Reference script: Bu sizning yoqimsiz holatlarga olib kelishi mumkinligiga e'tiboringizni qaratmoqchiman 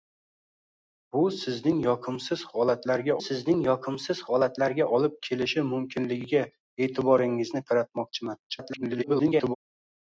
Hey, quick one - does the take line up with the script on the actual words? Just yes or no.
no